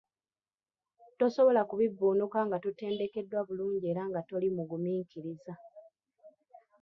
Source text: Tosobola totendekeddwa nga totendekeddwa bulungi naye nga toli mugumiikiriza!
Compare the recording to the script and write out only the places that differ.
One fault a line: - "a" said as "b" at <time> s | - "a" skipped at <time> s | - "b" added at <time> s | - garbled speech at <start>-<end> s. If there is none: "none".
- "totendekeddwa" said as "kubivvuunuka" at 1.7 s
- "naye" said as "era" at 3.9 s